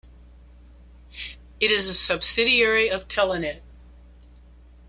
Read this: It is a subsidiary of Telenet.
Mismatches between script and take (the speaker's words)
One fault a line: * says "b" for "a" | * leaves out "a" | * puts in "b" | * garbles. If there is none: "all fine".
all fine